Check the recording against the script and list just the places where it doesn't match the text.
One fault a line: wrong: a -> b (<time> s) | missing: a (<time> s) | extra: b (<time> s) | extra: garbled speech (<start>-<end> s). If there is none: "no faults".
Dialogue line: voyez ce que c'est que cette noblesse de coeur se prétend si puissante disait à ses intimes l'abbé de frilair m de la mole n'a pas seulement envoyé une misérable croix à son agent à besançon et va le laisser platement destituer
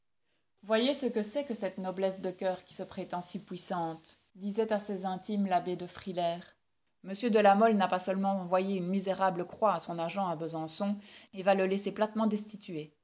extra: qui (2.6 s)